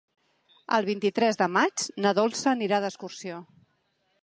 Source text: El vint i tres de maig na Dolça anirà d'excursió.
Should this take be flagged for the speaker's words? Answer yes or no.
no